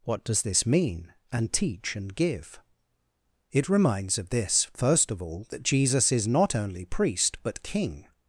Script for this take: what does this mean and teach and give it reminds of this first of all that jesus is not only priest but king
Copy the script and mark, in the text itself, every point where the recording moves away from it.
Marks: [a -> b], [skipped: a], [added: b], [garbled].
what does this mean and teach and give it reminds of this first of all that jesus is not only priest but king